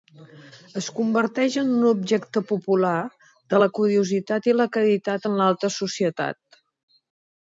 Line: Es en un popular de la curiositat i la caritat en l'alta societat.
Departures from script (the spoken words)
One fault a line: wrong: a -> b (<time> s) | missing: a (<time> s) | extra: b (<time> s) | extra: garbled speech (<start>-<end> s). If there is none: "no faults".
extra: converteix (1.0 s)
extra: objecte (1.9 s)